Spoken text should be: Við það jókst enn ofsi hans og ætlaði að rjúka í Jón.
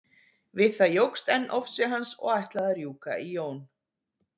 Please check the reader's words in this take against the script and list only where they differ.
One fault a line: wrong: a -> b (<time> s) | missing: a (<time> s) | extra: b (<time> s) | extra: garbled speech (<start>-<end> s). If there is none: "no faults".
no faults